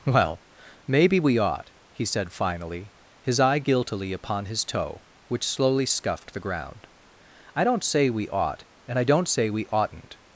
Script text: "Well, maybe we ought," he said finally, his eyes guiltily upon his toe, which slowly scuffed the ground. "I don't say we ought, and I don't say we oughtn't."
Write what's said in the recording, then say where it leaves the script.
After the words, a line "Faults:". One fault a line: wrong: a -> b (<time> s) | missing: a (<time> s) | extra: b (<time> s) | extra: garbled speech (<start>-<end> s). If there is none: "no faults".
"Well, maybe we ought," he said finally, his eye guiltily upon his toe, which slowly scuffed the ground. "I don't say we ought, and I don't say we oughtn't."
Faults:
wrong: eyes -> eye (3.4 s)